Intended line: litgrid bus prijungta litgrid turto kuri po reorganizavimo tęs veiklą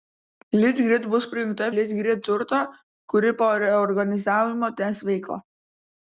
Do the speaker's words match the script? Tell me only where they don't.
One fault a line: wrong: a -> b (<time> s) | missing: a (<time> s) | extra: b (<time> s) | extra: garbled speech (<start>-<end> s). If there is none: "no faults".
no faults